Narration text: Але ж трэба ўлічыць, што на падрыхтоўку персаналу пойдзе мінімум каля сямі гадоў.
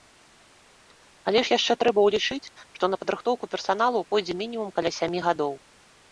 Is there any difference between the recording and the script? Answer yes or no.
yes